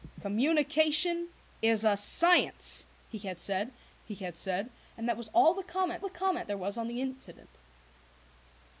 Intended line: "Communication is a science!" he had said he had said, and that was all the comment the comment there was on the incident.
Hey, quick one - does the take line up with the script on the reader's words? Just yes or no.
yes